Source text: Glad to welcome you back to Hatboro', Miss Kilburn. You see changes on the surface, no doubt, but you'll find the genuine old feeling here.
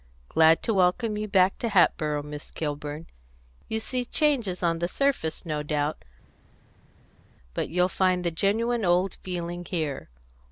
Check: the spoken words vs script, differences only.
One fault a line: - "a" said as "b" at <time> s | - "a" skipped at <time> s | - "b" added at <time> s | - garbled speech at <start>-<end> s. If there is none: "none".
none